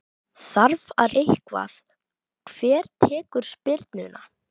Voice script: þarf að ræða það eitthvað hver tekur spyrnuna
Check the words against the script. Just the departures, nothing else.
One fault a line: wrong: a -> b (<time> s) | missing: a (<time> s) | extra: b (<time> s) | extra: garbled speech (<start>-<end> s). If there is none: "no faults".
missing: ræða það (1.1 s)